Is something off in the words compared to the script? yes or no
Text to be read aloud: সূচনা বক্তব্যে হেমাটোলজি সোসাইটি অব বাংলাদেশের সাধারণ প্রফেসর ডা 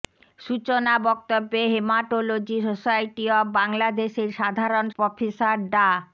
no